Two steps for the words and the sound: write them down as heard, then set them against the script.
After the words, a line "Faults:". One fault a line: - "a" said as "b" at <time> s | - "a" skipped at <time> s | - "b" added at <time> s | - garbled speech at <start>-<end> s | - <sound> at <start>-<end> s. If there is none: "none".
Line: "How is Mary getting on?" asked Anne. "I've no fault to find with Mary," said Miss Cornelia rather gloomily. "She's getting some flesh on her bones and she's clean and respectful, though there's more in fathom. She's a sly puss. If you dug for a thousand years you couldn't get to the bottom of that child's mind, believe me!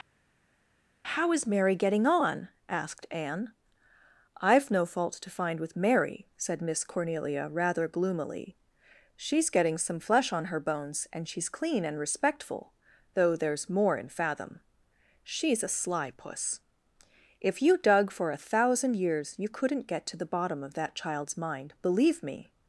"How is Mary getting on?" asked Anne. "I've no fault to find with Mary," said Miss Cornelia rather gloomily. "She's getting some flesh on her bones and she's clean and respectful, though there's more in fathom. She's a sly puss. If you dug for a thousand years you couldn't get to the bottom of that child's mind, believe me!
Faults:
none